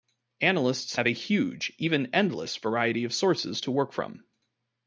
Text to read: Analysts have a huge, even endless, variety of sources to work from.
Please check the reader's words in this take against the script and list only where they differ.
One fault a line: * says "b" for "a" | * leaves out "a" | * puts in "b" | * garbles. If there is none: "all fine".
all fine